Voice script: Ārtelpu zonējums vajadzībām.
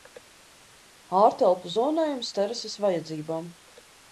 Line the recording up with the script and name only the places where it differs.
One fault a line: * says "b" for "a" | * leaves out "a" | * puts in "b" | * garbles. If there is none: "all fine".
* puts in "terases"